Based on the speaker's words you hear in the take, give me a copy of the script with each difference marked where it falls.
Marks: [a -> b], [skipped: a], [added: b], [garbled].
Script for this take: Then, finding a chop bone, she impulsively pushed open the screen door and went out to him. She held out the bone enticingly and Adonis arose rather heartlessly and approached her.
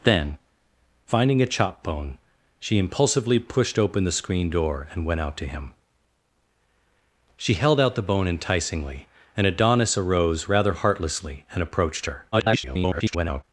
Then, finding a chop bone, she impulsively pushed open the screen door and went out to him. She held out the bone enticingly and Adonis arose rather heartlessly and approached her. [garbled]